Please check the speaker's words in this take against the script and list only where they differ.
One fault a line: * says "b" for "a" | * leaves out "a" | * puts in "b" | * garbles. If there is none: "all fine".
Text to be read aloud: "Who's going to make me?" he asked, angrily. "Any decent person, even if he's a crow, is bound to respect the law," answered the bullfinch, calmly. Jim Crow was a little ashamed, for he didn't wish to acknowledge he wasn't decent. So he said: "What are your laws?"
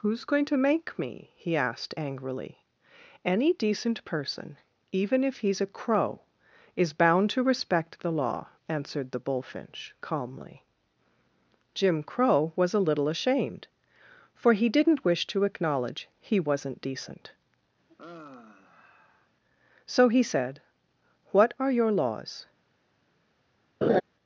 all fine